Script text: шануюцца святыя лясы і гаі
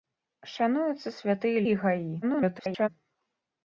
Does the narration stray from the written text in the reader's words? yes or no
yes